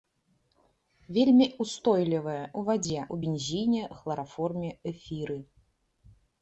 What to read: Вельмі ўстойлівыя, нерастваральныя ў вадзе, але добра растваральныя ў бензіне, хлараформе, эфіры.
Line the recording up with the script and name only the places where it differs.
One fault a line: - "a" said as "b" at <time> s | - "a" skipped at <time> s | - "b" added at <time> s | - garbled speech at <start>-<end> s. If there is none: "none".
- "нерастваральныя" skipped at 2.5 s
- "але добра растваральныя" skipped at 3.0 s